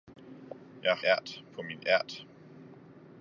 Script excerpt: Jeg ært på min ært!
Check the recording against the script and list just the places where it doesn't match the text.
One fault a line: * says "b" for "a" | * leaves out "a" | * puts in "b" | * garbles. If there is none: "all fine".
all fine